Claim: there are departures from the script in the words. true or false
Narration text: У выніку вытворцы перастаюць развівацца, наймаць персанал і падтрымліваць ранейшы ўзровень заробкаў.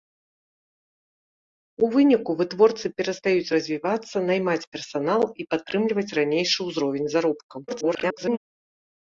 true